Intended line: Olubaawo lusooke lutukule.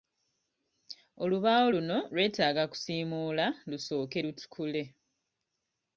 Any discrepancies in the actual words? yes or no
yes